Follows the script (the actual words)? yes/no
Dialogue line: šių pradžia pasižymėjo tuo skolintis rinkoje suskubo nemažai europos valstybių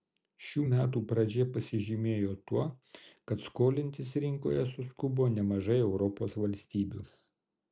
no